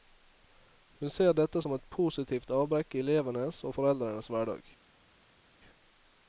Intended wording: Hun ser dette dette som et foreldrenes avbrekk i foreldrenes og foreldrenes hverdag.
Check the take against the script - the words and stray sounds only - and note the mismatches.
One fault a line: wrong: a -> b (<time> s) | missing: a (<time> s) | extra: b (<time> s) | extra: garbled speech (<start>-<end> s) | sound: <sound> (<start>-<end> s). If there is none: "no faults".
missing: dette (1.6 s)
wrong: foreldrenes -> positivt (2.0 s)
wrong: foreldrenes -> elevenes (3.1 s)